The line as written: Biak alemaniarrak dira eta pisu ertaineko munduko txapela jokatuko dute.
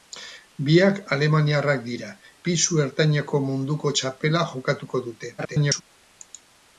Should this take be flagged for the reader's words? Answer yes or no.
yes